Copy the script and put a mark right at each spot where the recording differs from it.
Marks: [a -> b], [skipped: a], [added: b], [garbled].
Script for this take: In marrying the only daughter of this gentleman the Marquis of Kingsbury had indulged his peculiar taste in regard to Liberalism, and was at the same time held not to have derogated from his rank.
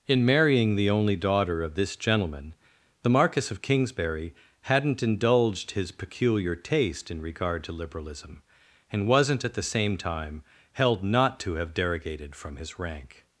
In marrying the only daughter of this gentleman the Marquis of Kingsbury [had -> hadn't] indulged his peculiar taste in regard to Liberalism, and [was -> wasn't] at the same time held not to have derogated from his rank.